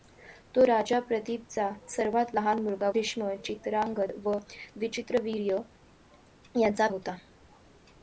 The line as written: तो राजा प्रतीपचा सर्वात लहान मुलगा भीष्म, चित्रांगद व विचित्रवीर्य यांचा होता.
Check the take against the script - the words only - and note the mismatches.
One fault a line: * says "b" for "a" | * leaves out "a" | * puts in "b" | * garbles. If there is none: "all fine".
all fine